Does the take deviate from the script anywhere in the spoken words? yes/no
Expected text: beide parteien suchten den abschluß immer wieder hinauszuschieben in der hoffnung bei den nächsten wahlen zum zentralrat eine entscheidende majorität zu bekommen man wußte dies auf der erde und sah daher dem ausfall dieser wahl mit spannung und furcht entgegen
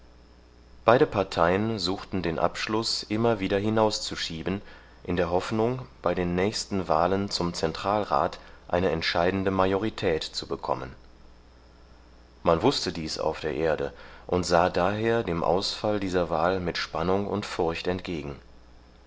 no